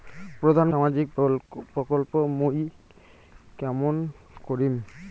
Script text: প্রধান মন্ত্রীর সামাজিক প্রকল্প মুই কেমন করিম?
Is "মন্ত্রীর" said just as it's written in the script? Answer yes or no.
no